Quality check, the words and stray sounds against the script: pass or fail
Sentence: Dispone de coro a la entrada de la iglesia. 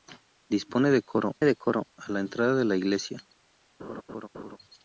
fail